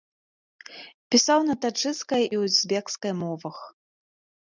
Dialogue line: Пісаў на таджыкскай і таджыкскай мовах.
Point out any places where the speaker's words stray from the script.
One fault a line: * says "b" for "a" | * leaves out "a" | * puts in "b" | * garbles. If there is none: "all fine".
* says "узбекскай" for "таджыкскай"